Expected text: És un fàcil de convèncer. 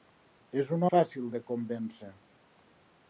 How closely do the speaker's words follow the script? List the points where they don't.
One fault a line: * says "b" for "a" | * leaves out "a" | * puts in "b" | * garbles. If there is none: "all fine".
all fine